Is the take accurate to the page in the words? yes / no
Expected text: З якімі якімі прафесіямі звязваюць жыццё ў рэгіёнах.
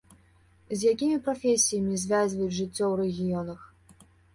no